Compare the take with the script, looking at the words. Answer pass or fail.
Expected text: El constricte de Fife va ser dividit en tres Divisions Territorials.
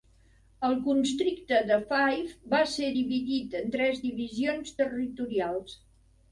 pass